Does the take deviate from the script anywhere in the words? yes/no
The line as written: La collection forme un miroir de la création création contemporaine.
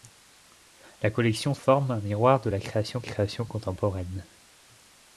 no